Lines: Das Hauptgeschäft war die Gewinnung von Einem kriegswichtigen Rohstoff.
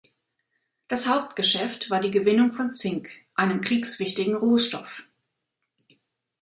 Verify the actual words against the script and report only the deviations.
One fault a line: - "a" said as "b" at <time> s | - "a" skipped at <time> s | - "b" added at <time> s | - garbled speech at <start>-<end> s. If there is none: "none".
- "Zink" added at 2.7 s